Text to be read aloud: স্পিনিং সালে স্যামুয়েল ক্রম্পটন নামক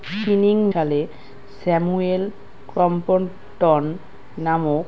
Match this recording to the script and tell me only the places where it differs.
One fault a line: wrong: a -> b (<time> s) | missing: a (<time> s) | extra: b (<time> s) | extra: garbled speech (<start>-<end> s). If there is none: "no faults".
no faults